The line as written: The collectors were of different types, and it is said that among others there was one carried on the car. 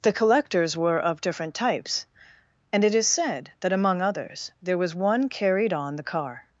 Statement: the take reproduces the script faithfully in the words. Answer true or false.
true